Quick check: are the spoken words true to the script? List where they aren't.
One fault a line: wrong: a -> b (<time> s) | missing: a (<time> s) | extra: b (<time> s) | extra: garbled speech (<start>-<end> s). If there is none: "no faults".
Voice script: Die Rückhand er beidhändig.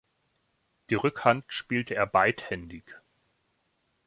extra: spielte (1.5 s)